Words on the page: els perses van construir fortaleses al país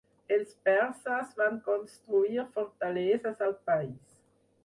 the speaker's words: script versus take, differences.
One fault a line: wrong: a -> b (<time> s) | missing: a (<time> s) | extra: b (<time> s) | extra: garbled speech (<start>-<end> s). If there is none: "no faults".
no faults